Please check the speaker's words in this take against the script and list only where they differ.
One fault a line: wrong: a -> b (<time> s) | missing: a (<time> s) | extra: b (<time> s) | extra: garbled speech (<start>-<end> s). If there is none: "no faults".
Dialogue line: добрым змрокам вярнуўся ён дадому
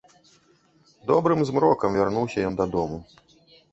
no faults